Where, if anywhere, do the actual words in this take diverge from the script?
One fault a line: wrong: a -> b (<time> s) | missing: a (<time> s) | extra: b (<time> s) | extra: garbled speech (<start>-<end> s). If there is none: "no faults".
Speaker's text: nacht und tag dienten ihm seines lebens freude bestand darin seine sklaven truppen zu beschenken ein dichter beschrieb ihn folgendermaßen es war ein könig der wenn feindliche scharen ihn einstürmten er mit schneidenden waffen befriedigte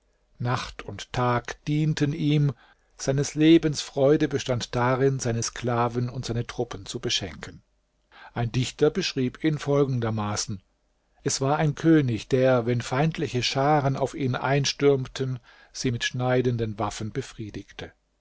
extra: und seine (6.1 s)
extra: auf (14.0 s)
wrong: er -> sie (15.7 s)